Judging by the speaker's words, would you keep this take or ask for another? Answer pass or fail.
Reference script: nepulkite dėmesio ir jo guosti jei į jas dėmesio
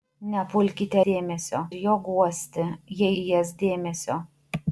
pass